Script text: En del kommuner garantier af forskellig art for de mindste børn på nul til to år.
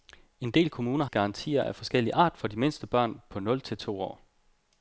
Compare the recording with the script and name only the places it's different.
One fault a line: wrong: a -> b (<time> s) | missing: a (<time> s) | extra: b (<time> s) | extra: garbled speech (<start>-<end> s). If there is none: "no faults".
no faults